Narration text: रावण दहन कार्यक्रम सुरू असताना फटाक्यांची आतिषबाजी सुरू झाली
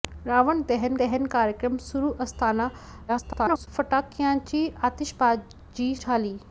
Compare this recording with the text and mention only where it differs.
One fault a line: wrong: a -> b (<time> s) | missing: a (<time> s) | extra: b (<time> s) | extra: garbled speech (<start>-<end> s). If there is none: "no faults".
extra: दहन (1.0 s)
extra: garbled speech (3.1-3.7 s)
missing: सुरू (5.9 s)